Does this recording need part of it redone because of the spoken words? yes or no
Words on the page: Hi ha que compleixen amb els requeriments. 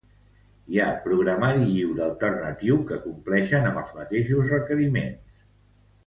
yes